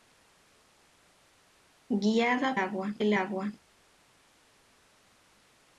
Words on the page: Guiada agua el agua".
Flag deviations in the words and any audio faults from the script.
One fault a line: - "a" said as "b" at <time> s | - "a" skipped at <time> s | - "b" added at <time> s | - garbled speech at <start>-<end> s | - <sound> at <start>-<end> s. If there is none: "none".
none